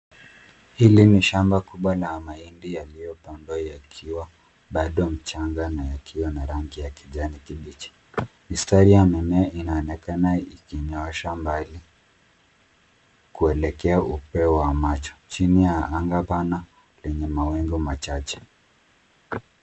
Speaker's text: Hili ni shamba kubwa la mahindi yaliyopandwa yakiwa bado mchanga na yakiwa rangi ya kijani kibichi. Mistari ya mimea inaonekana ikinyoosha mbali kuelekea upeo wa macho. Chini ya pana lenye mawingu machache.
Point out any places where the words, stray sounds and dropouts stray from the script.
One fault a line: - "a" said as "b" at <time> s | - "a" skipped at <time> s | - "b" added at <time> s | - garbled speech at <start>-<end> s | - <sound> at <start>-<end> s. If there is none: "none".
- "na" added at 6.3 s
- "anga" added at 15.9 s